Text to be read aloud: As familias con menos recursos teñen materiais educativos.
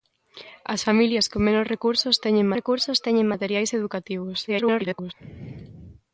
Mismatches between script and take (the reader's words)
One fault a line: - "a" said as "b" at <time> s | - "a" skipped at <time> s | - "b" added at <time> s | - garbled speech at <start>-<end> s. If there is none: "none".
- "recursos teñen" added at 2.6 s
- garbled speech at 4.5-5.1 s